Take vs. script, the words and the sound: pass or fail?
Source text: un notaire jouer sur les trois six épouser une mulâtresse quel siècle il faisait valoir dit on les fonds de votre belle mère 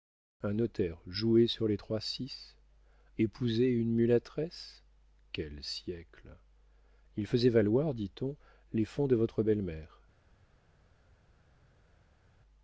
pass